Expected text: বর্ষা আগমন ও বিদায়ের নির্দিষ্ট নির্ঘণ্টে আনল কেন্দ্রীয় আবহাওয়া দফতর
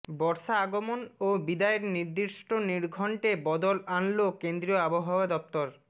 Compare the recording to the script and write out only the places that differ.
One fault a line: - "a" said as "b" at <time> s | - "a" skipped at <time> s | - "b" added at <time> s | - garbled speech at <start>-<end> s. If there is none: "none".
- "বদল" added at 3.5 s